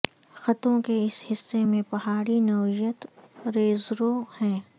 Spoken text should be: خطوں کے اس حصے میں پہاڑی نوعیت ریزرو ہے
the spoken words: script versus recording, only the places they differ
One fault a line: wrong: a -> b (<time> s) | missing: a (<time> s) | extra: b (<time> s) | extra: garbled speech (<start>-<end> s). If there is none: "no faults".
no faults